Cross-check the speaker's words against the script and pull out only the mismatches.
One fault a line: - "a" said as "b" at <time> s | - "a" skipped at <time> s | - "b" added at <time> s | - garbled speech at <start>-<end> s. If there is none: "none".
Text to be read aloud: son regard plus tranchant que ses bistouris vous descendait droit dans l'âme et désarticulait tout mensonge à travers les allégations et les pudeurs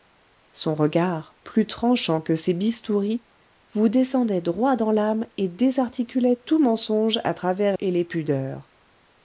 - "les allégations" skipped at 7.8 s